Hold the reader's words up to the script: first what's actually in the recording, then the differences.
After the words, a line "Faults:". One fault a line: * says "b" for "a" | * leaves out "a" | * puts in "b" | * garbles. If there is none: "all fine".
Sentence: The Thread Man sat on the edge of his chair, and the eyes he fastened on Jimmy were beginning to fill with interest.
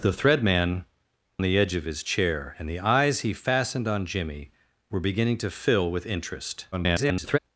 The Thread Man the edge of his chair, and the eyes he fastened on Jimmy were beginning to fill with interest. [garbled]
Faults:
* leaves out "sat on"
* garbles